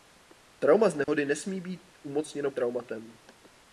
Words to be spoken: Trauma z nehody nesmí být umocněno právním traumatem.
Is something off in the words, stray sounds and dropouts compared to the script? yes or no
yes